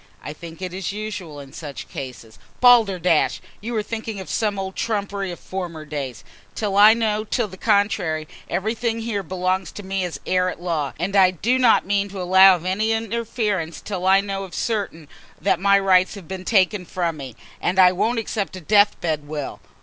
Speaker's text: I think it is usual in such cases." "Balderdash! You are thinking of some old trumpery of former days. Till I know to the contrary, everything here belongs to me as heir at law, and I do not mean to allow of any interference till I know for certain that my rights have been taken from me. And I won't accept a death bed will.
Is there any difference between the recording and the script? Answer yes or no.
no